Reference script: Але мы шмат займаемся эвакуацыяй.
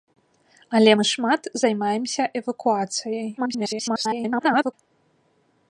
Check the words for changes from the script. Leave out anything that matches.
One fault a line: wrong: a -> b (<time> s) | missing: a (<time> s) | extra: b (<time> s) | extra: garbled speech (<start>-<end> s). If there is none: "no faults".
extra: garbled speech (3.4-4.7 s)